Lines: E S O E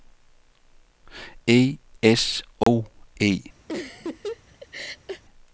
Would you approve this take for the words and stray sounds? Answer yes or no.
no